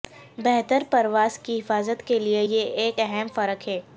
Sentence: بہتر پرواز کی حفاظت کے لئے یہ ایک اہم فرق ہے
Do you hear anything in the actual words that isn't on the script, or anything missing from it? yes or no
no